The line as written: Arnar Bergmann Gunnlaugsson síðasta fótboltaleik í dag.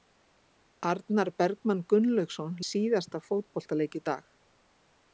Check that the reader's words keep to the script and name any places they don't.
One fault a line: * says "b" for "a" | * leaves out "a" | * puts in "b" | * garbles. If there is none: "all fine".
all fine